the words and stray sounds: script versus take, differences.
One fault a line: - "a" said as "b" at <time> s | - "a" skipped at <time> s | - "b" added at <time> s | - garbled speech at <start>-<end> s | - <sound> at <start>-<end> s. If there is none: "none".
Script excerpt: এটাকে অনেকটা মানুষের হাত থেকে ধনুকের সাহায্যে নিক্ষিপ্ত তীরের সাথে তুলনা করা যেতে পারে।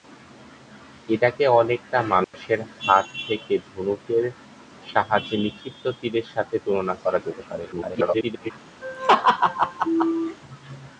- dropout at 2.2-2.3 s
- garbled speech at 7.7-8.5 s
- laugh at 8.8-10.4 s